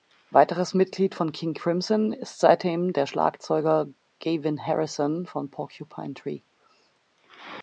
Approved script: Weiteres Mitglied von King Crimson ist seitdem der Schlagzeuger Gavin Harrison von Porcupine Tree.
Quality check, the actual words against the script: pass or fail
pass